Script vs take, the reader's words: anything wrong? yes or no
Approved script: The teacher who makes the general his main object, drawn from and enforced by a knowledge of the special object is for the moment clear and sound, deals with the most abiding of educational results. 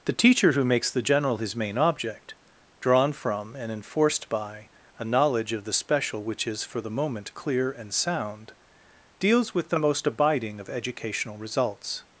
yes